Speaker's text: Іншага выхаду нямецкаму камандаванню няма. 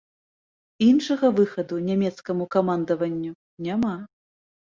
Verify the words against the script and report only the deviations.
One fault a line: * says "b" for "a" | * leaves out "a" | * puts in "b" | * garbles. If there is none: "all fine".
all fine